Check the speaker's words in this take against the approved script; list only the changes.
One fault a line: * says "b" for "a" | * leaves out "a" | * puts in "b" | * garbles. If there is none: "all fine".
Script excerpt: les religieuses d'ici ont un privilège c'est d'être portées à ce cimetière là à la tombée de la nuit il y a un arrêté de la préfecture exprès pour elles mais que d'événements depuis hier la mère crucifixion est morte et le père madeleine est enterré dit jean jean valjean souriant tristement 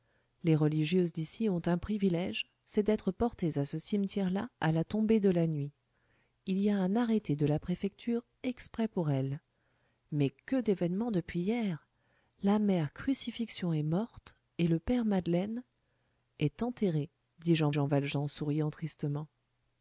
all fine